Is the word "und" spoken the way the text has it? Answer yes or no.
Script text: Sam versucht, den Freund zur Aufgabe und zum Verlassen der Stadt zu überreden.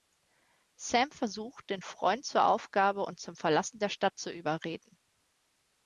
yes